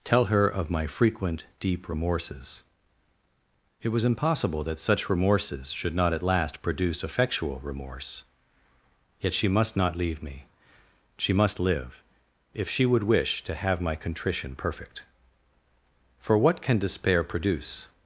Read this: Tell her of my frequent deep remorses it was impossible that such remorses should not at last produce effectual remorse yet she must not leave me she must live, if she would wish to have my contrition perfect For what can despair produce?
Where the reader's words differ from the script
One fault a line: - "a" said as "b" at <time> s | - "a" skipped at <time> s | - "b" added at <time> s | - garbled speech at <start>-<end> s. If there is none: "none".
none